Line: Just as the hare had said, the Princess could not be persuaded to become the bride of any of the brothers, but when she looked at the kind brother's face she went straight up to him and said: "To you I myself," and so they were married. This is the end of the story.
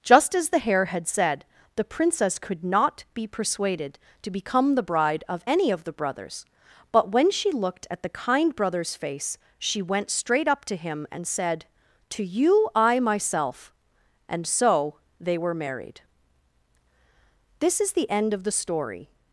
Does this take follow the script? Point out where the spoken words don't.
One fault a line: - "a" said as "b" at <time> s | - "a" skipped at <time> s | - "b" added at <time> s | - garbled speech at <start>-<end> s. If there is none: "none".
none